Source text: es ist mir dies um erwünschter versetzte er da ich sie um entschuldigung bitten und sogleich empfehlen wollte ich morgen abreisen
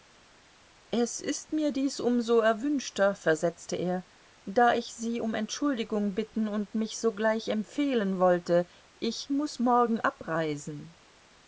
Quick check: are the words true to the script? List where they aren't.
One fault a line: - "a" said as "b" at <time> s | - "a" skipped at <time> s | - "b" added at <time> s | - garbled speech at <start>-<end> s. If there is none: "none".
- "so" added at 2.2 s
- "mich" added at 6.7 s
- "muß" added at 9.3 s